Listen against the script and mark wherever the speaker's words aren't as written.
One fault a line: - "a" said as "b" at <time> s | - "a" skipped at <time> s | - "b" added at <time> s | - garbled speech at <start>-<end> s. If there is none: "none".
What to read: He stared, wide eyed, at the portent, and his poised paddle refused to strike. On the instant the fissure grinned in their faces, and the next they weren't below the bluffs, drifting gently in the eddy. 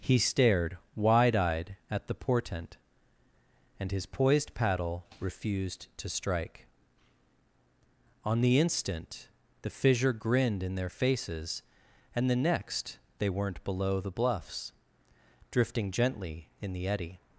none